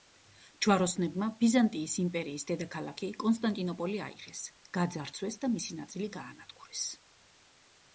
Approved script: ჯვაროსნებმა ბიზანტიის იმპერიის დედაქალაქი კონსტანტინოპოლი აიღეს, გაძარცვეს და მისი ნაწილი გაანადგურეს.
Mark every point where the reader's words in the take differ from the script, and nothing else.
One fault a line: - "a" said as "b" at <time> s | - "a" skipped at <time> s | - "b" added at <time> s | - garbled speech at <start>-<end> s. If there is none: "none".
none